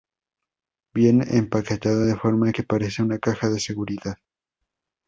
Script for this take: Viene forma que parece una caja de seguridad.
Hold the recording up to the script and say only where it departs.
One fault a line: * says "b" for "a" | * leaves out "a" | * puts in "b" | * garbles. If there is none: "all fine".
* puts in "empaquetado de"